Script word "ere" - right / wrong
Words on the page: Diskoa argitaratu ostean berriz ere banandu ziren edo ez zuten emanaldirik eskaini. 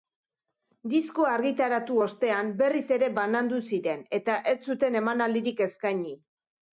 right